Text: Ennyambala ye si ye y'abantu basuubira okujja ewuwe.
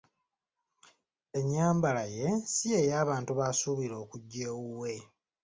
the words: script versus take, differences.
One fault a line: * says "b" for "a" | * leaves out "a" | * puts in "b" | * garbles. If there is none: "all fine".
all fine